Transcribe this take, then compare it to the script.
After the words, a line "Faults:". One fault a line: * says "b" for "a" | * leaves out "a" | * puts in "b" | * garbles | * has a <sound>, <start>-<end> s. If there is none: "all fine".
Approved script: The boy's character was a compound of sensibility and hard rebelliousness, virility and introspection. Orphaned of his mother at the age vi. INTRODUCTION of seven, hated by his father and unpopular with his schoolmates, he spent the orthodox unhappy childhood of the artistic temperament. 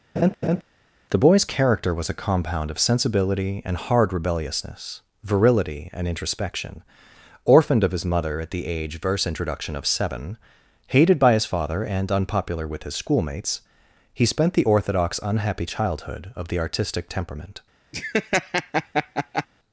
The boy's character was a compound of sensibility and hard rebelliousness, virility and introspection. Orphaned of his mother at the age verse. INTRODUCTION of seven, hated by his father and unpopular with his schoolmates, he spent the orthodox unhappy childhood of the artistic temperament.
Faults:
* has a laugh, 0.2-0.6 s
* says "verse" for "vi"
* has a laugh, 17.9-19.5 s